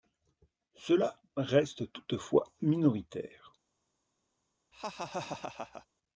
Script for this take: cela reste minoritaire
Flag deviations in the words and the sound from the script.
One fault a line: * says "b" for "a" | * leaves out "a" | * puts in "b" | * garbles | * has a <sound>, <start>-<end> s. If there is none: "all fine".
* puts in "toutefois"
* has a laugh, 4.7-5.9 s